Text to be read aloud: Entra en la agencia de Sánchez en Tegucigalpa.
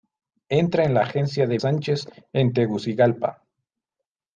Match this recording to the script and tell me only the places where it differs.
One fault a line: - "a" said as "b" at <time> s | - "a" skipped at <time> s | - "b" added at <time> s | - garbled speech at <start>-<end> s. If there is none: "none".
none